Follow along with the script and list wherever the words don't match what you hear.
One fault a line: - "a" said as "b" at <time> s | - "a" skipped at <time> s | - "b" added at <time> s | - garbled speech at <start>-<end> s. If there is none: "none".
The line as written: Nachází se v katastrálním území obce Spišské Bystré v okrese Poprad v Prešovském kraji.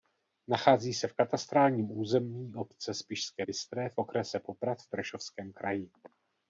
none